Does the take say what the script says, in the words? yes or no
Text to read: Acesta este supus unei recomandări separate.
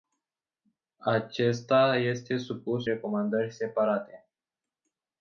no